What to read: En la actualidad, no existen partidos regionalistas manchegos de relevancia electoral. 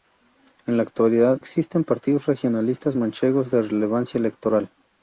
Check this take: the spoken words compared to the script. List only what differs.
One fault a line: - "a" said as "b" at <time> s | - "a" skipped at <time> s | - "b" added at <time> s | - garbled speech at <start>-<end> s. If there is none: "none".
- "no" skipped at 1.4 s